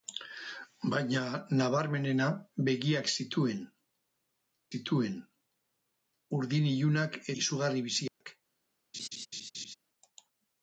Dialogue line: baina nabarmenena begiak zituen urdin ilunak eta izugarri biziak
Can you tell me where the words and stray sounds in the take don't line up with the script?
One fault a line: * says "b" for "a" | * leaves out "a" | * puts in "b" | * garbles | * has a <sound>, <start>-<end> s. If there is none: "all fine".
* puts in "zituen"
* leaves out "eta"
* has a dropout, 8.1-8.2 s
* has a laugh, 8.9-9.7 s